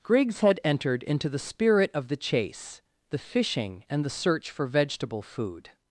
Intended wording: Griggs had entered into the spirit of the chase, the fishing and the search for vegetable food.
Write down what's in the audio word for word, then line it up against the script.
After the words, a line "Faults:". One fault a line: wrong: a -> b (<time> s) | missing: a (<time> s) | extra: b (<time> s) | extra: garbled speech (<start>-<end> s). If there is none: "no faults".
Griggs had entered into the spirit of the chase, the fishing and the search for vegetable food.
Faults:
no faults